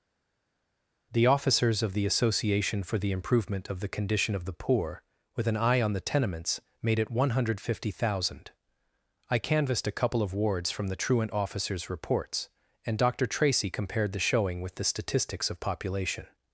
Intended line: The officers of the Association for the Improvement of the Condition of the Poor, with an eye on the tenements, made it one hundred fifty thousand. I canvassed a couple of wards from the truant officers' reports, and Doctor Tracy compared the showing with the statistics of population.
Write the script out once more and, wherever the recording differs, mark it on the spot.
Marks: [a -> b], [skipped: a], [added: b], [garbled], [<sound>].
The officers of the Association for the Improvement of the Condition of the Poor, with an eye on the tenements, made it one hundred fifty thousand. I canvassed a couple of wards from the truant officers' reports, and Doctor Tracy compared the showing with the statistics of population.